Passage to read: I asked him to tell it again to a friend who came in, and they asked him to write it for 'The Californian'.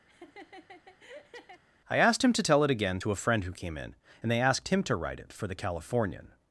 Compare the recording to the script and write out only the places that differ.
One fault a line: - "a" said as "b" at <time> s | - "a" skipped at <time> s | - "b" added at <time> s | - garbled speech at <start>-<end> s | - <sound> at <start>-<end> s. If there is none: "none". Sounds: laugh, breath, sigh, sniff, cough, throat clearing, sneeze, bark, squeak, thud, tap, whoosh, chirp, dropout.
- laugh at 0.1-1.6 s